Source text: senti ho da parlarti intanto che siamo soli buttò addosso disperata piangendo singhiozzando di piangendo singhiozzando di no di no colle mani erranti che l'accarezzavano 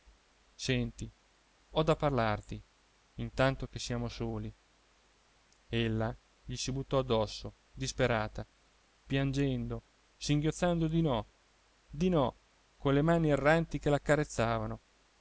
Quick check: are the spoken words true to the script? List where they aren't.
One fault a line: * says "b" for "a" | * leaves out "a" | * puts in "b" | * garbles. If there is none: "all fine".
* puts in "ella gli si"
* leaves out "piangendo singhiozzando di"